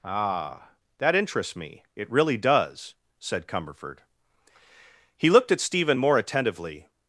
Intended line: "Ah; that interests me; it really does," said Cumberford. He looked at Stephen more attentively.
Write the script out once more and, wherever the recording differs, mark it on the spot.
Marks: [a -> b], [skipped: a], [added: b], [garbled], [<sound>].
"Ah; that interests me; it really does," said Cumberford. He looked at Stephen more attentively.